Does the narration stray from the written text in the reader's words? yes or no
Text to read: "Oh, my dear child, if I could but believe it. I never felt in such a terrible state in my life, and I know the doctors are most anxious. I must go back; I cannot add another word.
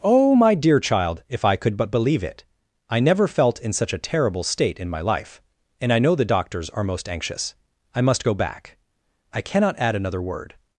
no